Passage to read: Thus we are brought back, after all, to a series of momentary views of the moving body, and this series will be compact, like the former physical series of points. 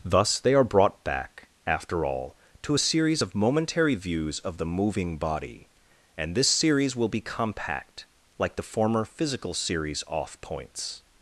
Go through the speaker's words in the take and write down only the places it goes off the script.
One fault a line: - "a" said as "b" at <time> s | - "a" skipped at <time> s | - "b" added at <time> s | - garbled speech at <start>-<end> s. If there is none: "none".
- "we" said as "they" at 0.4 s
- "of" said as "off" at 10.1 s